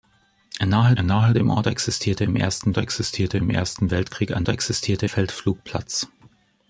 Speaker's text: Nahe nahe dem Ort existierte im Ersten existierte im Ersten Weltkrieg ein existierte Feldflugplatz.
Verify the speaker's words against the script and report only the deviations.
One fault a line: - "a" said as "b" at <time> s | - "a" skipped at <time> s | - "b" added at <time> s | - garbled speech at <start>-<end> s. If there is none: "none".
none